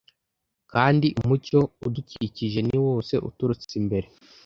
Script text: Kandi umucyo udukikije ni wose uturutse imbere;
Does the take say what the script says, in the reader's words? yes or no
yes